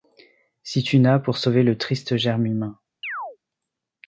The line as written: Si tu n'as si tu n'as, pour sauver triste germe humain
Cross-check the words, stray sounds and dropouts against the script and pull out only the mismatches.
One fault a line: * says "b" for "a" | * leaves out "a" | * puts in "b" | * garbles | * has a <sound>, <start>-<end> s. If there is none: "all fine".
* leaves out "si tu n'as"
* puts in "le"
* has a chirp, 3.0-3.4 s